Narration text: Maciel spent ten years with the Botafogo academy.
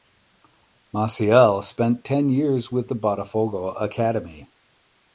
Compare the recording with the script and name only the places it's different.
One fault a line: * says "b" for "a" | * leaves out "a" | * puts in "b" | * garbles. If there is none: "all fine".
all fine